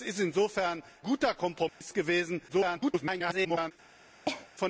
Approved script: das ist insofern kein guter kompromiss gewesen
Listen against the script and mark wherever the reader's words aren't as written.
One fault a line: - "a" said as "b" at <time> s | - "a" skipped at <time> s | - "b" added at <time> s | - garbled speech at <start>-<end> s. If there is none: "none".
- "kein" skipped at 0.8 s
- garbled speech at 2.5-3.7 s